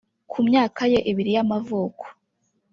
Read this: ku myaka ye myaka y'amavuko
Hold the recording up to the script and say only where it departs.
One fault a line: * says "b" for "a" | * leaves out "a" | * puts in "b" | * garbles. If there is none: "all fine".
* says "ibiri" for "myaka"